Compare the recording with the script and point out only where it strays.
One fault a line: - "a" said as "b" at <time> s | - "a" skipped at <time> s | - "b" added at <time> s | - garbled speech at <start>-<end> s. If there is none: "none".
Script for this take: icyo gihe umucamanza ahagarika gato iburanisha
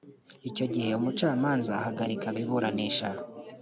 - "gato" skipped at 2.3 s